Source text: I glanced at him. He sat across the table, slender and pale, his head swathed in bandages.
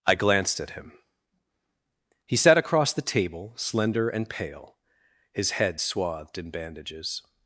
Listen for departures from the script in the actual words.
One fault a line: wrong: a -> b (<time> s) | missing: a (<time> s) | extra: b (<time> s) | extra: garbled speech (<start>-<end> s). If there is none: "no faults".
no faults